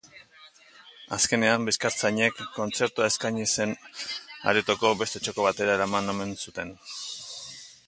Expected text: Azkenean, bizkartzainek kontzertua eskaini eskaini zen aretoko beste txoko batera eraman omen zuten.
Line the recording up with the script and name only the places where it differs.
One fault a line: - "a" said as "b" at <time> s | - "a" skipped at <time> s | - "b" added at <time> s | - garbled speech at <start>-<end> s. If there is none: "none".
- "eskaini" skipped at 3.5 s